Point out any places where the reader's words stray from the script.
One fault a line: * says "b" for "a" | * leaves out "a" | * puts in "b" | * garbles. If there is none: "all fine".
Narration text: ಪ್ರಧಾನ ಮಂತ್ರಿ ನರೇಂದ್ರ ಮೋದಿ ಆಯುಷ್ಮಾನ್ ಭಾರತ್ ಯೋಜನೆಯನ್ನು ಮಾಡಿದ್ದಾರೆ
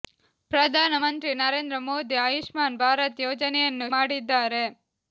all fine